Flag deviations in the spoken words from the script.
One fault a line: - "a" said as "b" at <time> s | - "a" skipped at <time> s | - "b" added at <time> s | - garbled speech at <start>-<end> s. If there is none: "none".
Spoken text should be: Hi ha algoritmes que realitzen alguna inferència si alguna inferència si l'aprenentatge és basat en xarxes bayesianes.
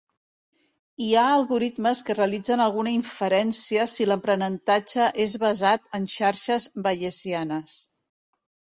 - "alguna inferència si" skipped at 4.1 s